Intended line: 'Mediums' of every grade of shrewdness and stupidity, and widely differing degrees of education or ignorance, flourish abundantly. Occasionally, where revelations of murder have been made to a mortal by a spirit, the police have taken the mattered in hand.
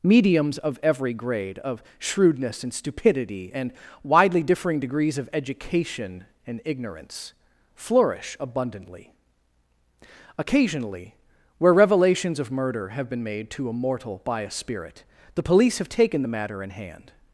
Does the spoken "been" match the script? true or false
true